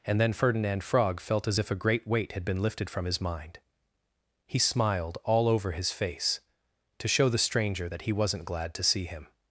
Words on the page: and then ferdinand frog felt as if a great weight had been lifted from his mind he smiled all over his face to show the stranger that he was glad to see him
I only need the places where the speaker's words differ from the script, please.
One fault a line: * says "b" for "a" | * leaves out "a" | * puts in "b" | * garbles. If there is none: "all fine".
* says "wasn't" for "was"